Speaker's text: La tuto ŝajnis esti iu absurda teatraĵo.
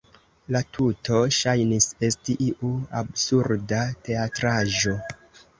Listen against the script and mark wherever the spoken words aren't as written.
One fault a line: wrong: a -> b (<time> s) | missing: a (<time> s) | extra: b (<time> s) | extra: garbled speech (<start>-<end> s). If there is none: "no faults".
no faults